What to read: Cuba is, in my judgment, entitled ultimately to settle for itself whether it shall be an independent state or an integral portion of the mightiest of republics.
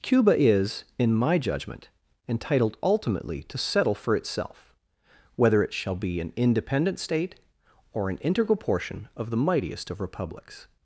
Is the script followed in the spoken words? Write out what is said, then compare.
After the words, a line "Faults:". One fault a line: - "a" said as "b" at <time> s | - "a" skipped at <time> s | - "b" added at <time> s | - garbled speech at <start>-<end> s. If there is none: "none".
Cuba is, in my judgment, entitled ultimately to settle for itself whether it shall be an independent state or an integral portion of the mightiest of republics.
Faults:
none